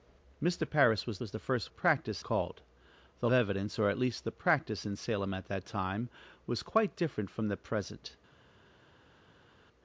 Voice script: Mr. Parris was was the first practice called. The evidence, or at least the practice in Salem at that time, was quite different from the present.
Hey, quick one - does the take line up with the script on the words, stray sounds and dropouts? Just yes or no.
yes